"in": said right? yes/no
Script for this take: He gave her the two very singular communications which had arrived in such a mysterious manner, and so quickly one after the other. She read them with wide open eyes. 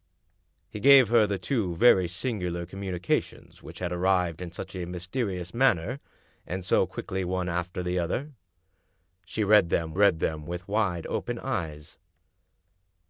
yes